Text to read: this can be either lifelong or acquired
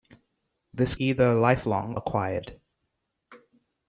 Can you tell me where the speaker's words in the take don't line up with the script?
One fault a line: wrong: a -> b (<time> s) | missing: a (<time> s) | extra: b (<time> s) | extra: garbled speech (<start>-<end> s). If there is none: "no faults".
missing: can be (0.9 s)
missing: or (1.9 s)